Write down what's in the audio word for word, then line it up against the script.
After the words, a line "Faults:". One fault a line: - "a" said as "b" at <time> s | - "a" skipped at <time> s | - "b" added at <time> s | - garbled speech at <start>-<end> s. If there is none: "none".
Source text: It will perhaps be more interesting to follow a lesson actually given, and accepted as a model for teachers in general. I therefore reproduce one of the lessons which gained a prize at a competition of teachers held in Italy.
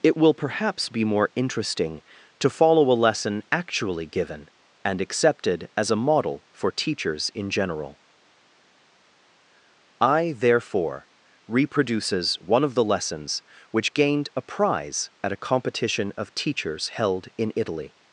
It will perhaps be more interesting to follow a lesson actually given, and accepted as a model for teachers in general. I therefore reproduces one of the lessons which gained a prize at a competition of teachers held in Italy.
Faults:
- "reproduce" said as "reproduces" at 11.5 s